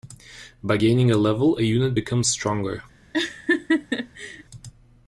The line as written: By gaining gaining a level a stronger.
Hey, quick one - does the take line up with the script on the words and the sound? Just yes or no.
no